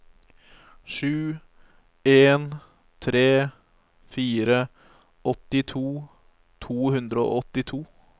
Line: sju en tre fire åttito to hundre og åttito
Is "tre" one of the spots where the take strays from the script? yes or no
no